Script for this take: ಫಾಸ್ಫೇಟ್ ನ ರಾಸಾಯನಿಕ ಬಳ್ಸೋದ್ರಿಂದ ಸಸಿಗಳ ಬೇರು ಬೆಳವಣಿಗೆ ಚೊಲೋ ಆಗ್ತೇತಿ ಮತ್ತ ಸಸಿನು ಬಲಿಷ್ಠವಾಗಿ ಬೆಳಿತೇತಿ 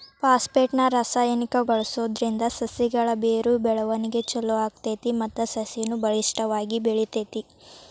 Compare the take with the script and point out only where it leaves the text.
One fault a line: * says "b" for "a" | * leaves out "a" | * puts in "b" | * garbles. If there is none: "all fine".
all fine